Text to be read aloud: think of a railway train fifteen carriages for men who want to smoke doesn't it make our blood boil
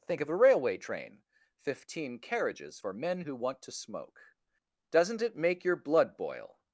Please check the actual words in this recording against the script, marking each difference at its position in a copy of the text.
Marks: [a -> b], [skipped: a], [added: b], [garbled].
think of a railway train fifteen carriages for men who want to smoke doesn't it make [our -> your] blood boil